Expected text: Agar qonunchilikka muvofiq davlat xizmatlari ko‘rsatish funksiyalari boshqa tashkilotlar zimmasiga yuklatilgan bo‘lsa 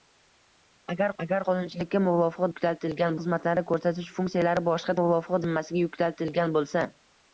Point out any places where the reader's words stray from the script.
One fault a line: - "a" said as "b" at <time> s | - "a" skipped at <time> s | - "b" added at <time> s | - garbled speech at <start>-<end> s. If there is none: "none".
- "agar" added at 1.2 s
- "davlat" said as "yuklatilgan" at 2.5 s
- "tashkilotlar" said as "muvofiq" at 5.0 s